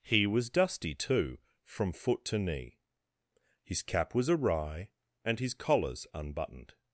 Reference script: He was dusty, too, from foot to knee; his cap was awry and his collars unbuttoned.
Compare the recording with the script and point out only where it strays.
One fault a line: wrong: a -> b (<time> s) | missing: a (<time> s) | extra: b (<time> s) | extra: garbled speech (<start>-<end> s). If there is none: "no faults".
no faults